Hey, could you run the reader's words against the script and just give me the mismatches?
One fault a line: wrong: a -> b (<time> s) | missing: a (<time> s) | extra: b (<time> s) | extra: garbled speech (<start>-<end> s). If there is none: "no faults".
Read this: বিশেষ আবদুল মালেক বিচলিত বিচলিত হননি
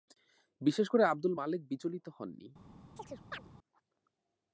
extra: করে (0.9 s)
missing: বিচলিত (2.1 s)